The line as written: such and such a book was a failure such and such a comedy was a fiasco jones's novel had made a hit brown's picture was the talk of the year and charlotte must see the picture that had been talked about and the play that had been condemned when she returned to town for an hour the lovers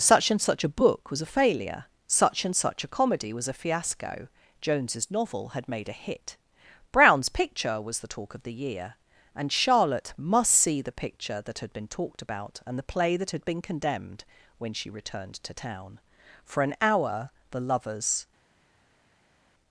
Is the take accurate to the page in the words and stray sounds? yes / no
yes